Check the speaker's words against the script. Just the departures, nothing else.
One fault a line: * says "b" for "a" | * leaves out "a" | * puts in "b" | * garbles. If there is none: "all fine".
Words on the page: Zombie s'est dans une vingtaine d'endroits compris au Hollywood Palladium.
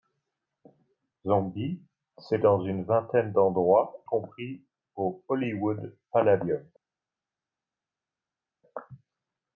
all fine